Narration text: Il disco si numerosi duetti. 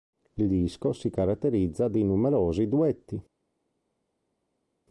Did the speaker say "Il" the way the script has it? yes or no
yes